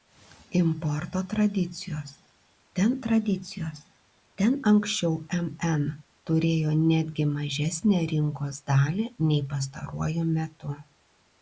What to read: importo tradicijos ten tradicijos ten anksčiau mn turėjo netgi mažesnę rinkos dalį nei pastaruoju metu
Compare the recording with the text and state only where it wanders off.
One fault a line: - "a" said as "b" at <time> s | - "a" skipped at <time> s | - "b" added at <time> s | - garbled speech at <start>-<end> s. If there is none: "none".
none